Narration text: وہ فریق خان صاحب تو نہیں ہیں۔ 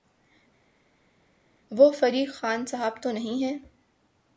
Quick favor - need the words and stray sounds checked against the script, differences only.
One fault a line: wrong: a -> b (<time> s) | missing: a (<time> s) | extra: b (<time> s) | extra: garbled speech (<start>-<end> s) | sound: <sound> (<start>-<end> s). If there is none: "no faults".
no faults